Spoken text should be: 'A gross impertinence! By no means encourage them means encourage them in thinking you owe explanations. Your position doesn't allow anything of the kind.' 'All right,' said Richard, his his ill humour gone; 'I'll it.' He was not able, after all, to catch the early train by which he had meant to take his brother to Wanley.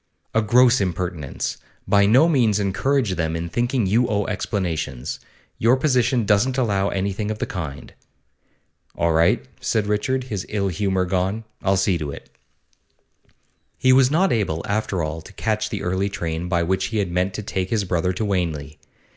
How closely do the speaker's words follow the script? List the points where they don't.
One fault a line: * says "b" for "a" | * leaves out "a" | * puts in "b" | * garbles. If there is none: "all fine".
* leaves out "means encourage them"
* leaves out "his"
* puts in "see to"